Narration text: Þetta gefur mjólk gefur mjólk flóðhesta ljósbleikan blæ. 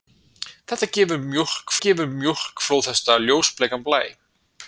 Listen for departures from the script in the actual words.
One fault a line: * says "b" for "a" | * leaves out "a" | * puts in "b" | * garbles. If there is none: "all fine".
all fine